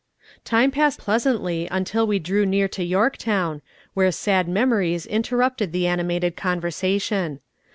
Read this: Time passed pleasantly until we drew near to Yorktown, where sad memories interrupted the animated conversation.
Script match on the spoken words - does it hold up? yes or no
yes